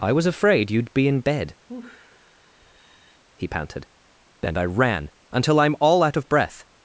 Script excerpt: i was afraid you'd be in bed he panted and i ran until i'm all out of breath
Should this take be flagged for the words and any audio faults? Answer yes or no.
yes